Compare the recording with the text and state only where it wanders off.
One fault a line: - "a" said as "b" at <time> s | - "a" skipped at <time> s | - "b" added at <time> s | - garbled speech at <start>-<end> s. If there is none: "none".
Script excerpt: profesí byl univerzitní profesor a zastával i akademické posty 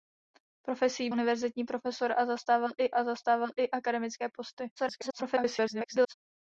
- "byl" skipped at 1.1 s
- "a zastával i" added at 2.9 s
- garbled speech at 4.8-6.1 s